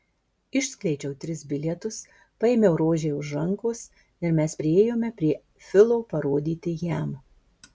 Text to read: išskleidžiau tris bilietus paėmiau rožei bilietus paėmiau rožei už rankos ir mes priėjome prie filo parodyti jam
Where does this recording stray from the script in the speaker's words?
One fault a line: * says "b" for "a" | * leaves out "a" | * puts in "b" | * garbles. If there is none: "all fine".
* leaves out "bilietus paėmiau rožei"